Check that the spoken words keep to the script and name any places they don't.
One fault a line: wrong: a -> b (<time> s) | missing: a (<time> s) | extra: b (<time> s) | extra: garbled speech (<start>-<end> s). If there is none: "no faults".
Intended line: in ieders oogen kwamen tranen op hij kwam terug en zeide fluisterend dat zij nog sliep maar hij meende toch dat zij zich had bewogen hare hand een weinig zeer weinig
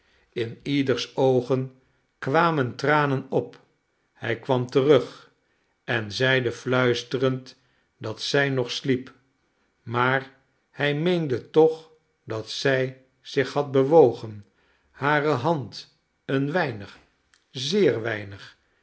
no faults